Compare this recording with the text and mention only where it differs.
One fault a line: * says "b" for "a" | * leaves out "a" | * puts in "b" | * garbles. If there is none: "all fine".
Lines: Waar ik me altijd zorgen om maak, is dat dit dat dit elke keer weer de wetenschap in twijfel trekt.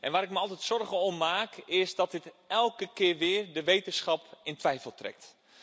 * leaves out "dat dit"